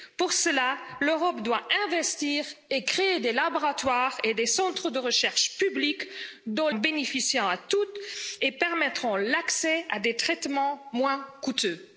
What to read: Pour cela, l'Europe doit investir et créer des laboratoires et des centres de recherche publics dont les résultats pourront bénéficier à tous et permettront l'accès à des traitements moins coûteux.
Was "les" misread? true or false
true